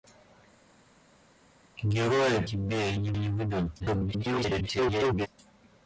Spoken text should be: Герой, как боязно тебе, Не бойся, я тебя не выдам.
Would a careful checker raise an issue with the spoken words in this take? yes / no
yes